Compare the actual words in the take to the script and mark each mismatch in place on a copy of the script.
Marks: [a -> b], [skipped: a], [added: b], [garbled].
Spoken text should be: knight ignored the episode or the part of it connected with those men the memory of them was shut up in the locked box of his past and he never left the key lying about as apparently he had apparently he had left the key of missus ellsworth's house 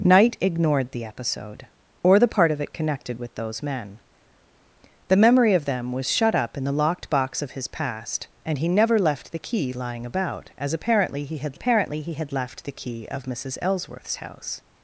knight ignored the episode or the part of it connected with those men the memory of them was shut up in the locked box of his past and he never left the key lying about as apparently he had apparently he had left the key of missus ellsworth's house